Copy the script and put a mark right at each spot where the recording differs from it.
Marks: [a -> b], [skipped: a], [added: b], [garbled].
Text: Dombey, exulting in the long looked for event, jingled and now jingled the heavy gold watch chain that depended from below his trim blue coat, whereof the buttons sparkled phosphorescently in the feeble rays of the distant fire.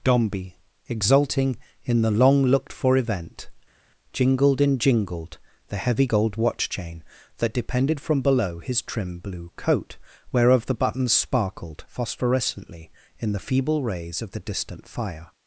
Dombey, exulting in the long looked for event, jingled and [skipped: now] jingled the heavy gold watch chain that depended from below his trim blue coat, whereof the buttons sparkled phosphorescently in the feeble rays of the distant fire.